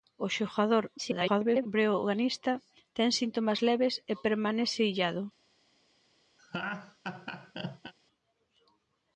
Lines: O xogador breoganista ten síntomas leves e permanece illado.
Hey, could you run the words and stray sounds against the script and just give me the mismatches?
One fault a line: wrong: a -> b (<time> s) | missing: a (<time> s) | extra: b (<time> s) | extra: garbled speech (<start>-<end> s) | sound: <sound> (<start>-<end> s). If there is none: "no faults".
extra: garbled speech (1.0-1.7 s)
sound: laugh (6.4-7.9 s)